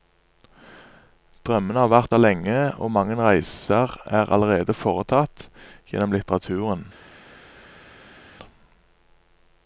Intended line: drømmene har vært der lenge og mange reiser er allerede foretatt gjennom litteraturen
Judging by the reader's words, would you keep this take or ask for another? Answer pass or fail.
pass